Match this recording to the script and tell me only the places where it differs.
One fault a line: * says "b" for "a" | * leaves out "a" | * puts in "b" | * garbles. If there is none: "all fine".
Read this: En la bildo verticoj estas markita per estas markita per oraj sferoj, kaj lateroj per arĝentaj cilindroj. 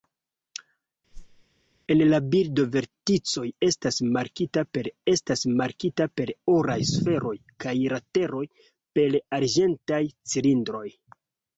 all fine